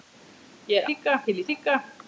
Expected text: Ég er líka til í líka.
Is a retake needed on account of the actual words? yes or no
no